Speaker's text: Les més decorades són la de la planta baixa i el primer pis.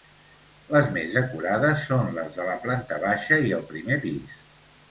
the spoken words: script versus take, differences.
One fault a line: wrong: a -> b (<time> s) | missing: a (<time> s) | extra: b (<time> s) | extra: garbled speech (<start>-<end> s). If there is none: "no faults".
wrong: la -> les (2.2 s)